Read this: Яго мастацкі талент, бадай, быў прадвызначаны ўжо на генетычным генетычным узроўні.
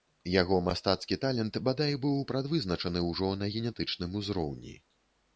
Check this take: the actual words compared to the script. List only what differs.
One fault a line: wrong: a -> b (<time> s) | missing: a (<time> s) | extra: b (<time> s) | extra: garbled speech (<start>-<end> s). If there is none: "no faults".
missing: генетычным (4.1 s)